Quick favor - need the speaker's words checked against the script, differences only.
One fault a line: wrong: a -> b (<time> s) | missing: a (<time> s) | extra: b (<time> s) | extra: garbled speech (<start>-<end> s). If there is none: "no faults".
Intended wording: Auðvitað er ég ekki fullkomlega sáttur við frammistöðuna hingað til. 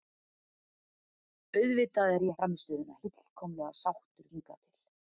wrong: ekki -> frammistöðuna (2.4 s)
missing: við frammistöðuna (4.3 s)